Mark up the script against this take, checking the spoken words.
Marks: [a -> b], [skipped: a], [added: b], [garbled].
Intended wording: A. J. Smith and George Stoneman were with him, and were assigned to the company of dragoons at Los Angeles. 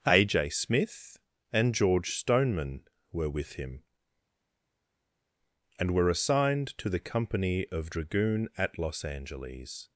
A. J. Smith and George Stoneman were with him, and were assigned to the company of [dragoons -> dragoon] at Los Angeles.